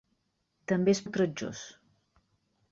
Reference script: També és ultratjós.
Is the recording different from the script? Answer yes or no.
no